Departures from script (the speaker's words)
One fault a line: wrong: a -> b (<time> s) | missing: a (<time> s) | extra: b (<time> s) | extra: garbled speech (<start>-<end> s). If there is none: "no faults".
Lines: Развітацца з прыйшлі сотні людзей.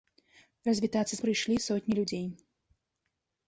no faults